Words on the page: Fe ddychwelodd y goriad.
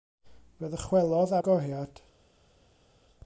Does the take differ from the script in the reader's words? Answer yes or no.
no